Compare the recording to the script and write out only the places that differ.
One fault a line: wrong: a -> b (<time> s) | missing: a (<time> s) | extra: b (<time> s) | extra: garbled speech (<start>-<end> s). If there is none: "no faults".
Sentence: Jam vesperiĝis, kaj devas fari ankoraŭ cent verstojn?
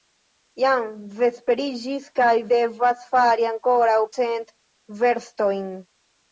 no faults